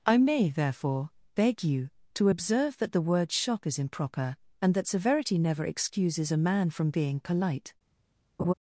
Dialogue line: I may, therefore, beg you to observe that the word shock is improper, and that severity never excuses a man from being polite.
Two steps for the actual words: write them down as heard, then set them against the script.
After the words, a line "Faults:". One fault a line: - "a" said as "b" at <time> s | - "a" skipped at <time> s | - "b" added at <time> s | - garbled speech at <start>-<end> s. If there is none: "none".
I may, therefore, beg you to observe that the word shock is improper, and that severity never excuses a man from being polite.
Faults:
none